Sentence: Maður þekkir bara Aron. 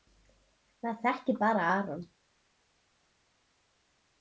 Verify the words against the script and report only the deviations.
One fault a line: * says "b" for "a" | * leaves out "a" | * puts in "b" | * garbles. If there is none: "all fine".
all fine